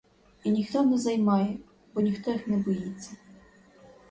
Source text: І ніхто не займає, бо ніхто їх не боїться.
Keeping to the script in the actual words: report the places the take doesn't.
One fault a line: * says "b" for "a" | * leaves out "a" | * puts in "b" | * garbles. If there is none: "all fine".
all fine